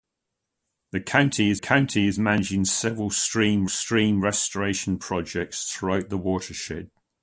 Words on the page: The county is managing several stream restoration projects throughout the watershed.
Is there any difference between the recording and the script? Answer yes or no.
yes